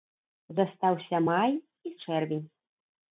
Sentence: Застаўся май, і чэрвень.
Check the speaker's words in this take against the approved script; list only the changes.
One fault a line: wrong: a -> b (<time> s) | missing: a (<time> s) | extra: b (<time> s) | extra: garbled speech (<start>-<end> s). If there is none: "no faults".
no faults